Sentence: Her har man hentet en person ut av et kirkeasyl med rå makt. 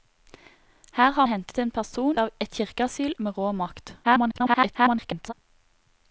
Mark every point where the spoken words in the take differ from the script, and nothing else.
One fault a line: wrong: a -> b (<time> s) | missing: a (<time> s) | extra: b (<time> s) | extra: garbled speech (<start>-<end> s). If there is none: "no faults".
missing: man (1.2 s)
missing: ut (2.2 s)
extra: garbled speech (4.0-5.3 s)